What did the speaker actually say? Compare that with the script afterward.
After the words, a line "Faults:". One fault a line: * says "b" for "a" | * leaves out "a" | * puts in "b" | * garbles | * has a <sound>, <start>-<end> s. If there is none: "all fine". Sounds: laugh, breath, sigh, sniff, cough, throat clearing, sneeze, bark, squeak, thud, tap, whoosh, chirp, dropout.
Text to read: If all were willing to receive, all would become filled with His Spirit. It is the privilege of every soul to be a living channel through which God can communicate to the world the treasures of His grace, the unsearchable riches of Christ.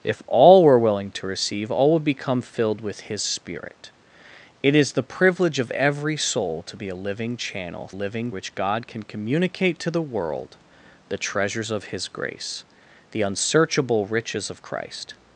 If all were willing to receive, all would become filled with His Spirit. It is the privilege of every soul to be a living channel living which God can communicate to the world the treasures of His grace, the unsearchable riches of Christ.
Faults:
* says "living" for "through"